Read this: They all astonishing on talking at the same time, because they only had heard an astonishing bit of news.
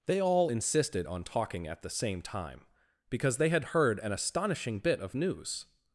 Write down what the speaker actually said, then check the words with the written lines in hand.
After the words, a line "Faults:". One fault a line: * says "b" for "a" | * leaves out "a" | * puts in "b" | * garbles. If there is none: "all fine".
They all insisted on talking at the same time, because they had heard an astonishing bit of news.
Faults:
* says "insisted" for "astonishing"
* leaves out "only"